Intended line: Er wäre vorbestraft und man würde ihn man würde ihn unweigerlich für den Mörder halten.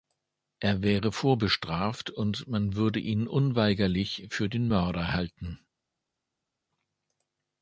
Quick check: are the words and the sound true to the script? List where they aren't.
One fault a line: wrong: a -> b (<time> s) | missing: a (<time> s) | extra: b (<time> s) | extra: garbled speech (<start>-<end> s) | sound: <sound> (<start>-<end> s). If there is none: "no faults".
missing: man würde ihn (3.3 s)